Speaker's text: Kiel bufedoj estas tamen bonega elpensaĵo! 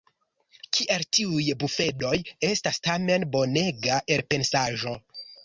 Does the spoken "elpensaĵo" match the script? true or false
true